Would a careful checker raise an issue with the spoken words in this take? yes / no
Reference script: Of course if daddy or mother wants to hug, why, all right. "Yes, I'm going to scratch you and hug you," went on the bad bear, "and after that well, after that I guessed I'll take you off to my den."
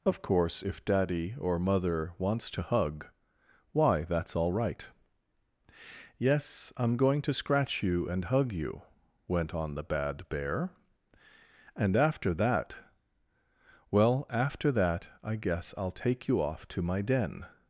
yes